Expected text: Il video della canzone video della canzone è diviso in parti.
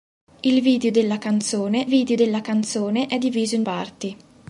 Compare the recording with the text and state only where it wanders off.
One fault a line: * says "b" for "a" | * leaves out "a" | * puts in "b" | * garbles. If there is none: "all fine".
all fine